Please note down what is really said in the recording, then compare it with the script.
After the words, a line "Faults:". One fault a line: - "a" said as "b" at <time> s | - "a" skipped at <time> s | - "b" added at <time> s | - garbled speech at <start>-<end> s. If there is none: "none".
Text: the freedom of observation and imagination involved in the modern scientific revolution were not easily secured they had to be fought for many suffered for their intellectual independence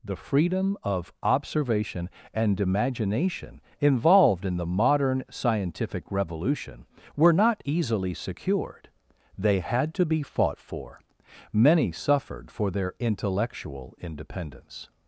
the freedom of observation and imagination involved in the modern scientific revolution were not easily secured they had to be fought for many suffered for their intellectual independence
Faults:
none